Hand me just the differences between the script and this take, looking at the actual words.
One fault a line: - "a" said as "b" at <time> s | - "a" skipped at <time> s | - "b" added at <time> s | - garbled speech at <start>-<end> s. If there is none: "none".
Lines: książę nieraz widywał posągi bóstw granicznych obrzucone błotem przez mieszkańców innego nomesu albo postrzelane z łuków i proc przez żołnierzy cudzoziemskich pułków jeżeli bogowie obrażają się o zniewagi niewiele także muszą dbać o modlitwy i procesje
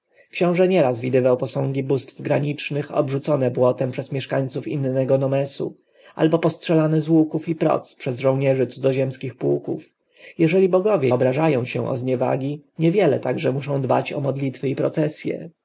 none